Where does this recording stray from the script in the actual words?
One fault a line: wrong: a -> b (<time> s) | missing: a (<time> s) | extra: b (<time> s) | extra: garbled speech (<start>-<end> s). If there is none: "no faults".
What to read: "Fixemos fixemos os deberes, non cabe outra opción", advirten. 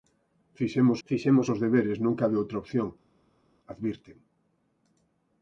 no faults